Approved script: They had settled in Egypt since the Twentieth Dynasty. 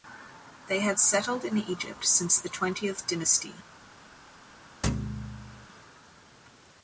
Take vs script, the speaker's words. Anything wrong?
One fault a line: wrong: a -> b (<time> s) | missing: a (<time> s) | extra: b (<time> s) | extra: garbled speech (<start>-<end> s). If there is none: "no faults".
no faults